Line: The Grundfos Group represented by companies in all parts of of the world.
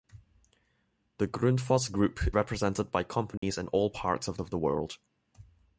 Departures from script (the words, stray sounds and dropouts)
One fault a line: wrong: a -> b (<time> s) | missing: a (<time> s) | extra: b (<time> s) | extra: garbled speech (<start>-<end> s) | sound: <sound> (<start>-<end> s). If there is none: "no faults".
sound: dropout (3.4-3.4 s)